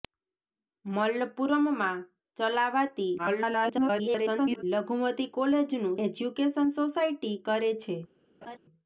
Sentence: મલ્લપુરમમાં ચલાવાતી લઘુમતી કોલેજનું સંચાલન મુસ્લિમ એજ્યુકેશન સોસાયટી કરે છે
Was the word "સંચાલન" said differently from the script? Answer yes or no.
yes